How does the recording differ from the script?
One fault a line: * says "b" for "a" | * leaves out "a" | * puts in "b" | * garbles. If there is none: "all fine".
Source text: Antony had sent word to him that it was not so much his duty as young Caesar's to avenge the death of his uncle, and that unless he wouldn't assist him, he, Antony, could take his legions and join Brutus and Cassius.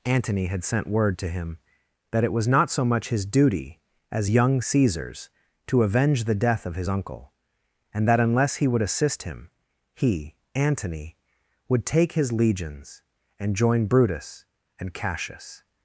* says "would" for "wouldn't"
* says "would" for "could"